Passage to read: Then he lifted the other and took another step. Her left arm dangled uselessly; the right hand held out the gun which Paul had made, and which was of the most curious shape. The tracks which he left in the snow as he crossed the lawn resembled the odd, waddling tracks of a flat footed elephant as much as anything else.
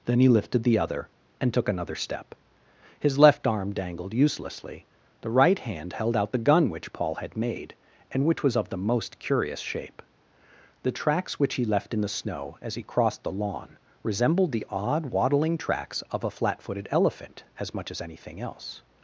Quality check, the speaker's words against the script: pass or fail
fail